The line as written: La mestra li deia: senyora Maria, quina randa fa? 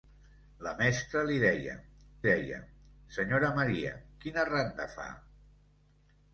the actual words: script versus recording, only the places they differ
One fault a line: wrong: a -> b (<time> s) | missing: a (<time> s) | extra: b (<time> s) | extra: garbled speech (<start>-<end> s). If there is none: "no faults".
extra: deia (2.3 s)